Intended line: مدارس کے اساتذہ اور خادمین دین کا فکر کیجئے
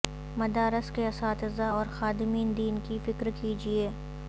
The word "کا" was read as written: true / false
false